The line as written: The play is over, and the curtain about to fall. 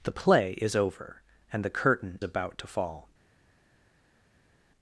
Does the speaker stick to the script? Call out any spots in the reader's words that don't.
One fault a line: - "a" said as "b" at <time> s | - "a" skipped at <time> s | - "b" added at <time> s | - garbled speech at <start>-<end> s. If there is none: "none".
none